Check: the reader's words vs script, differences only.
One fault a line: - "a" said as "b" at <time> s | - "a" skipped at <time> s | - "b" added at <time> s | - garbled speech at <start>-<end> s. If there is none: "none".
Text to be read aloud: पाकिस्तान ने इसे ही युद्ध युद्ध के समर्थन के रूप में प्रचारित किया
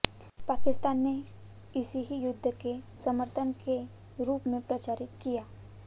- "युद्ध" skipped at 2.5 s